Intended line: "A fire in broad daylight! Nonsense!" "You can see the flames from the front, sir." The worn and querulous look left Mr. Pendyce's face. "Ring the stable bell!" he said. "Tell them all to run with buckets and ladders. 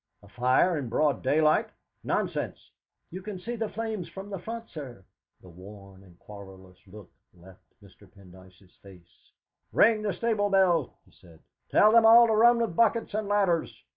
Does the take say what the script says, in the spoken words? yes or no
yes